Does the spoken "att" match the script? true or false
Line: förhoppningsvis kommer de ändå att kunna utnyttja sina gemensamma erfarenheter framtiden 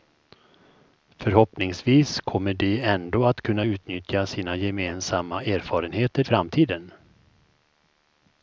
true